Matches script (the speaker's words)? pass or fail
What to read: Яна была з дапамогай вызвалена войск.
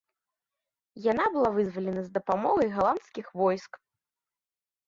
fail